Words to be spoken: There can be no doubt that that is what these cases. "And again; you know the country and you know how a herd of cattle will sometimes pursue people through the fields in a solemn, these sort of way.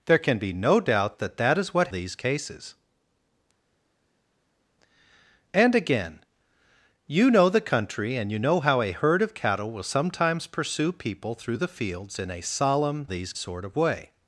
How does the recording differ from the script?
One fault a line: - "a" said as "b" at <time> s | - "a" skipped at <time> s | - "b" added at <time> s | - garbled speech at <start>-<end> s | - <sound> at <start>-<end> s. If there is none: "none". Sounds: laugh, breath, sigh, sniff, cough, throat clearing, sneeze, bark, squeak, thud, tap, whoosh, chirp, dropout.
none